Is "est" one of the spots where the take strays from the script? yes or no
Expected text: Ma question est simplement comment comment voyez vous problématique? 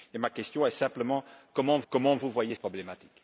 no